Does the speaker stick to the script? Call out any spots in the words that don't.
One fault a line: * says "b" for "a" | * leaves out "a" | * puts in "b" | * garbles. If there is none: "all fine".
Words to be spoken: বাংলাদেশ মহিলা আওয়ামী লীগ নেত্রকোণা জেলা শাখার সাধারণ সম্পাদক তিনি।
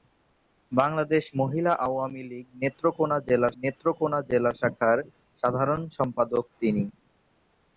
* puts in "নেত্রকোণা জেলা"